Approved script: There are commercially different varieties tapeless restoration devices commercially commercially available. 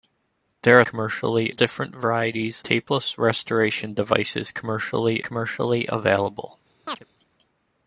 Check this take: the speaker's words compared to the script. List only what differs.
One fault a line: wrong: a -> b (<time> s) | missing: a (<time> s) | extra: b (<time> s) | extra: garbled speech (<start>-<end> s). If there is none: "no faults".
no faults